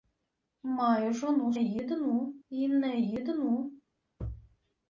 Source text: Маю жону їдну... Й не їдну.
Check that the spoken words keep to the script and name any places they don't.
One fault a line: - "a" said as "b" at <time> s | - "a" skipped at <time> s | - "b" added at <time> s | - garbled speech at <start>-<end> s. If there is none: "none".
none